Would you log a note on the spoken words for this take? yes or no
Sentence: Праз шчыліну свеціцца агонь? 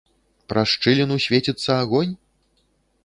no